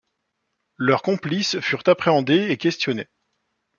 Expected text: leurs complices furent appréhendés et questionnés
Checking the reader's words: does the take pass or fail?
pass